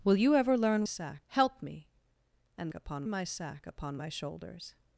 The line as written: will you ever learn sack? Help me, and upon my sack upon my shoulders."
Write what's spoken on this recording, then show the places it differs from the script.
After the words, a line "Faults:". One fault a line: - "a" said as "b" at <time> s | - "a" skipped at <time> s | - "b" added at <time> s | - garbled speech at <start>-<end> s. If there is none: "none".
will you ever learn sack? Help me, and upon my sack upon my shoulders."
Faults:
none